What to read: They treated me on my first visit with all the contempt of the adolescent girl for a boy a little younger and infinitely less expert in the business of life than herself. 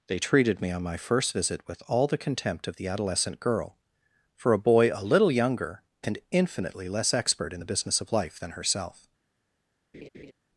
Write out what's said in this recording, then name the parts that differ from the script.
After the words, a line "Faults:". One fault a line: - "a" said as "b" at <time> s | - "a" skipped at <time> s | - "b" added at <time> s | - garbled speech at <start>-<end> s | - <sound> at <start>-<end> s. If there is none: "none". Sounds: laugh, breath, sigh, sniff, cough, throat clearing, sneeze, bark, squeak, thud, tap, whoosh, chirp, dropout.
They treated me on my first visit with all the contempt of the adolescent girl for a boy a little younger and infinitely less expert in the business of life than herself.
Faults:
- laugh at 9.9-10.3 s